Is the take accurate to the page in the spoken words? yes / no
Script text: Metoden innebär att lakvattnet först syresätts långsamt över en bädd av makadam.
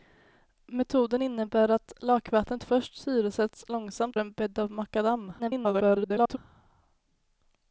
no